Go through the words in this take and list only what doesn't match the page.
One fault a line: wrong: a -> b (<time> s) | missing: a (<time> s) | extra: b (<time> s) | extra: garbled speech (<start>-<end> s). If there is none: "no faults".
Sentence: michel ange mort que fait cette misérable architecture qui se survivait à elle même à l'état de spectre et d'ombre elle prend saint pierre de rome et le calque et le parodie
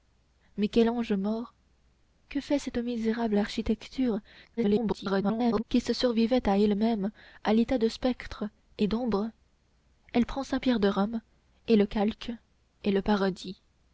extra: garbled speech (4.6-5.6 s)